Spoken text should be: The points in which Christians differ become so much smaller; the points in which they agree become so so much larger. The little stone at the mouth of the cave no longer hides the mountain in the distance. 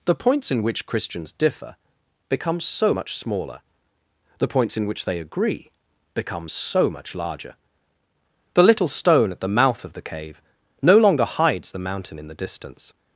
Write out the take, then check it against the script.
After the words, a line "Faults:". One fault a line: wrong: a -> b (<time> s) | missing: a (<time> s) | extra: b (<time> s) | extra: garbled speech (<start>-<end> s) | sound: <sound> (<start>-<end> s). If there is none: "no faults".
The points in which Christians differ become so much smaller; the points in which they agree become so much larger. The little stone at the mouth of the cave no longer hides the mountain in the distance.
Faults:
missing: so (6.9 s)